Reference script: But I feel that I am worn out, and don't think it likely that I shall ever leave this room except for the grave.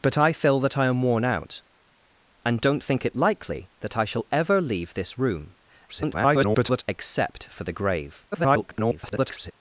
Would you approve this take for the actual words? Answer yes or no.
no